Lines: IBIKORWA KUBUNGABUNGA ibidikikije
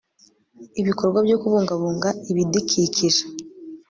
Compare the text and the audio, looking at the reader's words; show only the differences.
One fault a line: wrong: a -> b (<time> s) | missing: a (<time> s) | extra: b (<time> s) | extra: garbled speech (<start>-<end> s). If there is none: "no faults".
extra: BYO (1.2 s)